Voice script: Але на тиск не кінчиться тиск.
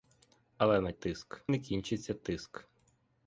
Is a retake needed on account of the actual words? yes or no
no